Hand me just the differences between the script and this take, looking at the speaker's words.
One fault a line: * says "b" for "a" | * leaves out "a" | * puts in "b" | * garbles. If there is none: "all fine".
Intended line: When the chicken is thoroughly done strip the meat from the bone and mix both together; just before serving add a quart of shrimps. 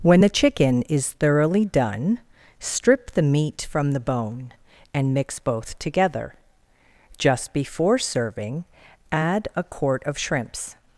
all fine